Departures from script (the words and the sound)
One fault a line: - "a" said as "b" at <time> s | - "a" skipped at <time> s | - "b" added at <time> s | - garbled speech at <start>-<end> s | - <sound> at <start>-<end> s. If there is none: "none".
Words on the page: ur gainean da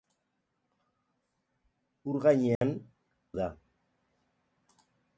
- dropout at 2.6-2.6 s